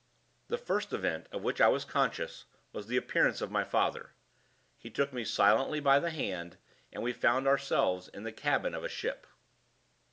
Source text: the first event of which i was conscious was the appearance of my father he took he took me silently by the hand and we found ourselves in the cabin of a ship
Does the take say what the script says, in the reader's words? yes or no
no